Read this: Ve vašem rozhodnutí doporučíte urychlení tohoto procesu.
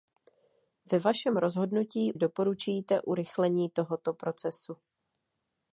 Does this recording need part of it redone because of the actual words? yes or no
no